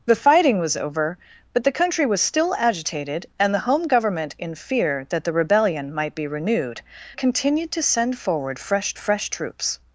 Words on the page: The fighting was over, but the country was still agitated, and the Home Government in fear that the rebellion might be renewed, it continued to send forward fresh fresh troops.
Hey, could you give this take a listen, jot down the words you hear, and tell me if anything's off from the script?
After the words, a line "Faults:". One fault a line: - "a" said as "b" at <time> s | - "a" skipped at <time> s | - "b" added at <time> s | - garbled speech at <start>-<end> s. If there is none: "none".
The fighting was over, but the country was still agitated, and the Home Government in fear that the rebellion might be renewed, it continued to send forward fresh fresh troops.
Faults:
none